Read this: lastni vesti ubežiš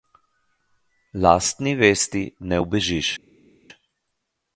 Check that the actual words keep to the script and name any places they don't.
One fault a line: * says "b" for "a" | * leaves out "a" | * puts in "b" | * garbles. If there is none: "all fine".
* puts in "ne"